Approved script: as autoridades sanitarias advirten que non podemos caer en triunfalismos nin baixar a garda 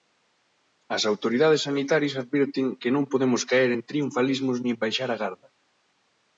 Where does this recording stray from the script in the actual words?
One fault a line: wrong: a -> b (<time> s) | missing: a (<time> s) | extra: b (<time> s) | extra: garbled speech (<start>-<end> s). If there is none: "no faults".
no faults